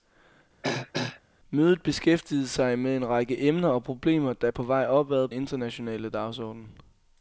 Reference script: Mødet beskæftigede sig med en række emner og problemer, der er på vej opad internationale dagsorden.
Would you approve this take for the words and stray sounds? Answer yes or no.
no